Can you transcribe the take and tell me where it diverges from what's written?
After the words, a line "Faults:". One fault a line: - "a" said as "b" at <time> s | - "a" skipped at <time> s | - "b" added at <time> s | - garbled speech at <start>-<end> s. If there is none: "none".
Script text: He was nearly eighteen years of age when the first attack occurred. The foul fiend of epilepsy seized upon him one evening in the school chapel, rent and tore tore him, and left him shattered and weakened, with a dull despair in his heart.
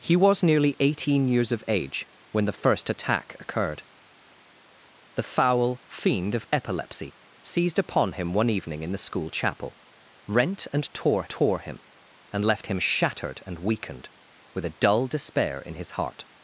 He was nearly eighteen years of age when the first attack occurred. The foul fiend of epilepsy seized upon him one evening in the school chapel, rent and tore tore him, and left him shattered and weakened, with a dull despair in his heart.
Faults:
none